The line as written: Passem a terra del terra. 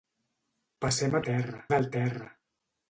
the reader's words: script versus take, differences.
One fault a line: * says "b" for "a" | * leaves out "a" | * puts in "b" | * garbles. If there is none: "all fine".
all fine